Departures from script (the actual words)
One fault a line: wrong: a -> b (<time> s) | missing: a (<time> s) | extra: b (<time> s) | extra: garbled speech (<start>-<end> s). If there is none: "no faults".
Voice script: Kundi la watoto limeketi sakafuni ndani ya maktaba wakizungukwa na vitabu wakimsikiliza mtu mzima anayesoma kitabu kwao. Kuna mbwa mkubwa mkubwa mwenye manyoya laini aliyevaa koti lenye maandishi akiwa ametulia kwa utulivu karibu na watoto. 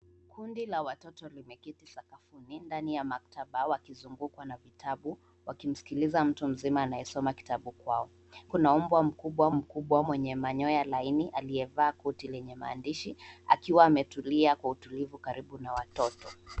no faults